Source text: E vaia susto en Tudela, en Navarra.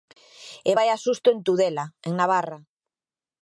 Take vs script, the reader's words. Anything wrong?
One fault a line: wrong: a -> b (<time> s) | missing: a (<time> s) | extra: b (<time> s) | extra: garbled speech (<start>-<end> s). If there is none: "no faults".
no faults